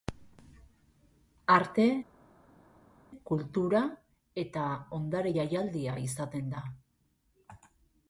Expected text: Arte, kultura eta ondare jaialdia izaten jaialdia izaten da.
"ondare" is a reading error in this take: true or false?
false